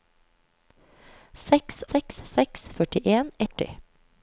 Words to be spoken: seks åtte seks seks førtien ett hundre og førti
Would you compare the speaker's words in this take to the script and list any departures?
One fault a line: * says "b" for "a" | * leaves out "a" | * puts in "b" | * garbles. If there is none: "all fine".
* leaves out "åtte"
* leaves out "ett hundre og"